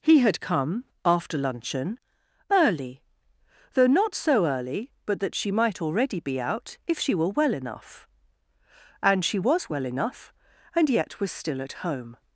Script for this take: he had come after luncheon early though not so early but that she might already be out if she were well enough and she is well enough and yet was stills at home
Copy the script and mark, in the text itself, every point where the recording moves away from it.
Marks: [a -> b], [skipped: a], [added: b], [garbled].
he had come after luncheon early though not so early but that she might already be out if she were well enough and she [is -> was] well enough and yet was [stills -> still] at home